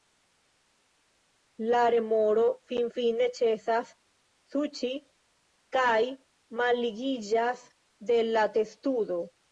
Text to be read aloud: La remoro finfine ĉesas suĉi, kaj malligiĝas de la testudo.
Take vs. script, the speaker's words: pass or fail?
pass